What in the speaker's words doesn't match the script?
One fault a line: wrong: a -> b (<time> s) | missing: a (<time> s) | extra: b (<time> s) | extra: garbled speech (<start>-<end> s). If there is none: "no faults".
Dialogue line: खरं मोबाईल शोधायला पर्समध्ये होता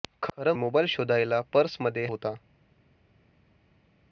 no faults